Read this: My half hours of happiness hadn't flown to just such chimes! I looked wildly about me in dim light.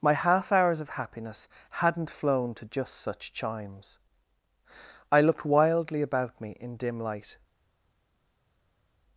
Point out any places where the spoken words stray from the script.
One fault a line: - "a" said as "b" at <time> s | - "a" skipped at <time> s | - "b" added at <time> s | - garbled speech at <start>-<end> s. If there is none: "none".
none